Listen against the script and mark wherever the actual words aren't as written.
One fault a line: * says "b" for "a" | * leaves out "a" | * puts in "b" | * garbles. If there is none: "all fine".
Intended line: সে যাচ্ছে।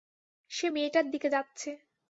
* puts in "মেয়েটার দিকে"